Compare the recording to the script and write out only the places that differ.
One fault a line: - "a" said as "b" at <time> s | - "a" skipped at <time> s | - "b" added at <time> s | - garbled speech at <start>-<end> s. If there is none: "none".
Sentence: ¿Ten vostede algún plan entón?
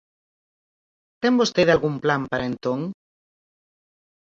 - "para" added at 2.3 s